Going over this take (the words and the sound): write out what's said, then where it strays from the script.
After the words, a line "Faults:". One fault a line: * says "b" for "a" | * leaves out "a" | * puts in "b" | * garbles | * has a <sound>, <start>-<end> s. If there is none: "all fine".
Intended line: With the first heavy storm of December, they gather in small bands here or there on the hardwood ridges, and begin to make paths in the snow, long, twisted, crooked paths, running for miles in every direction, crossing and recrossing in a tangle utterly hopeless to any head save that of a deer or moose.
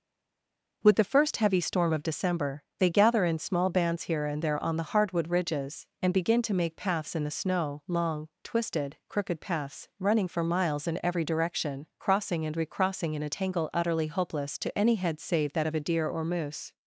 With the first heavy storm of December, they gather in small bands here and there on the hardwood ridges, and begin to make paths in the snow, long, twisted, crooked paths, running for miles in every direction, crossing and recrossing in a tangle utterly hopeless to any head save that of a deer or moose.
Faults:
* says "and" for "or"